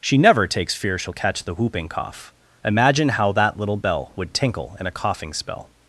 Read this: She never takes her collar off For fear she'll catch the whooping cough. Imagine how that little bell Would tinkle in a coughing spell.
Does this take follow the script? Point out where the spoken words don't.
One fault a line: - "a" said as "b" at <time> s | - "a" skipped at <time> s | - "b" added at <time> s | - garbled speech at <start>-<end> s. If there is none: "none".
- "her collar off For" skipped at 0.7 s